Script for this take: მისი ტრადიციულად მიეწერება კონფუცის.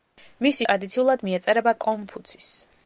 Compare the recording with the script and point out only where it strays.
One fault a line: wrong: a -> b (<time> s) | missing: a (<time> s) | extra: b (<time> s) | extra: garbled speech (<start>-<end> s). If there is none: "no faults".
no faults